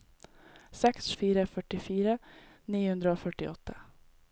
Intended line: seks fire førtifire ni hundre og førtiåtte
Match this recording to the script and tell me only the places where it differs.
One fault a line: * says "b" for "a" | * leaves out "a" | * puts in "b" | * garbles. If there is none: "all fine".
all fine